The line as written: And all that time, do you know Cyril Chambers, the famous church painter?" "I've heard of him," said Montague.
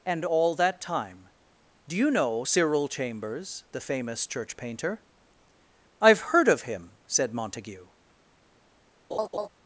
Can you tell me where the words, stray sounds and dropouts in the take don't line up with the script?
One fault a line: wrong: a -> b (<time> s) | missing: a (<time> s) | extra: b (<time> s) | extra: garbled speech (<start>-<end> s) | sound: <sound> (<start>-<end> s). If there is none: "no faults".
sound: laugh (9.1-9.5 s)